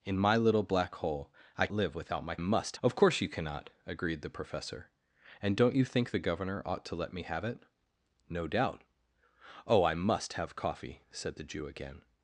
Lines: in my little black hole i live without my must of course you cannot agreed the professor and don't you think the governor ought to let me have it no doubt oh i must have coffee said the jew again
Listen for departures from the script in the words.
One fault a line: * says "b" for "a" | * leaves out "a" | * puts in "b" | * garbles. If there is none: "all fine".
all fine